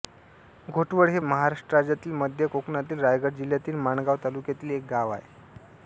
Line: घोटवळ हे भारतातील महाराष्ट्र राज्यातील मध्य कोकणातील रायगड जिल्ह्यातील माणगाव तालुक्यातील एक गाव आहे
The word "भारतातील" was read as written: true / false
false